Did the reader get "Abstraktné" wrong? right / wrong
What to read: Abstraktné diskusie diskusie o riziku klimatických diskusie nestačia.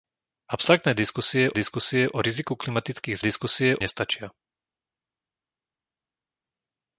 right